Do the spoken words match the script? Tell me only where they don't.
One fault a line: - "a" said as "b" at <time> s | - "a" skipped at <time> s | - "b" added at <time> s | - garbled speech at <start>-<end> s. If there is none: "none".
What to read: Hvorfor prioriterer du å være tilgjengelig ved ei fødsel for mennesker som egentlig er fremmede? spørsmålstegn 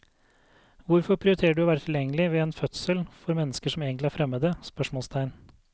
- "ei" said as "en" at 2.4 s